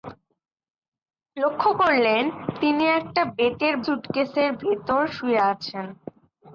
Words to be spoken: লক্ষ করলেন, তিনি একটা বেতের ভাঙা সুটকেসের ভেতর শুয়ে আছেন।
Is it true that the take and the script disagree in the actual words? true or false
true